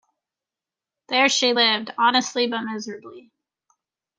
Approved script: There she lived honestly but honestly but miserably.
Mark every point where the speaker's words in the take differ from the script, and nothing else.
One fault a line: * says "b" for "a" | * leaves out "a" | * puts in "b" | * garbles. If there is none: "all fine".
* leaves out "honestly but"